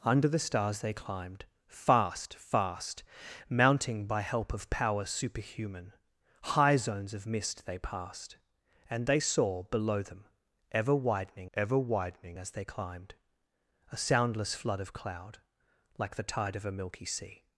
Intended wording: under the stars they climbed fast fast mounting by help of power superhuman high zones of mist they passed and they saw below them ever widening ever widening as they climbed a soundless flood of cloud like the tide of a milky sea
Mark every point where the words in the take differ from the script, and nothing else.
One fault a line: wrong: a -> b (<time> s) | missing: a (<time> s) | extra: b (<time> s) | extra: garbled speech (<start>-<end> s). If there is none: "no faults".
no faults